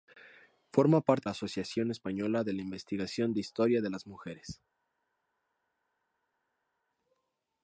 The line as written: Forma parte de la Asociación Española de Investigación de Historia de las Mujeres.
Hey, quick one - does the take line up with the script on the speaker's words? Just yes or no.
no